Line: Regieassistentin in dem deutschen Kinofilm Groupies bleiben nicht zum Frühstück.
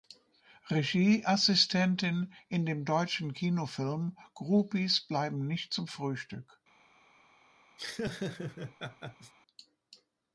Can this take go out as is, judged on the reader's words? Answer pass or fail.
pass